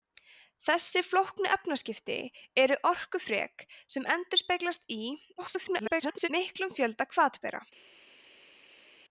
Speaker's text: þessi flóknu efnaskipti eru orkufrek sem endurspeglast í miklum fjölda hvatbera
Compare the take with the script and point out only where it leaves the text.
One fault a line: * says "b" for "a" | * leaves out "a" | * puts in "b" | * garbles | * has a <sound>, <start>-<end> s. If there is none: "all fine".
* garbles